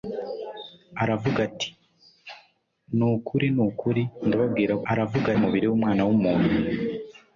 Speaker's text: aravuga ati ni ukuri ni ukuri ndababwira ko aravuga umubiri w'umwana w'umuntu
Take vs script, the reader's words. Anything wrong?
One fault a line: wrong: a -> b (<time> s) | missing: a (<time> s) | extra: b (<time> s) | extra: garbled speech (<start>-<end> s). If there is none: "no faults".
no faults